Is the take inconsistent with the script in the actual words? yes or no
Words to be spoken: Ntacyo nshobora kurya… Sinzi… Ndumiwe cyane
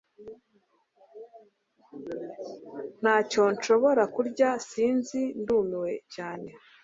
no